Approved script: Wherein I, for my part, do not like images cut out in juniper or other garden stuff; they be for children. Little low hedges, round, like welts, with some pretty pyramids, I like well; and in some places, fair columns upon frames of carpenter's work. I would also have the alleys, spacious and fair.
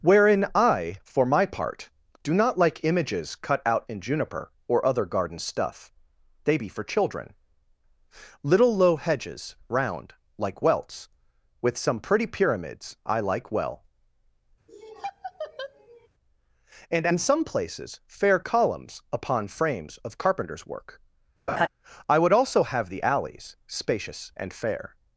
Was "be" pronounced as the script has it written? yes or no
yes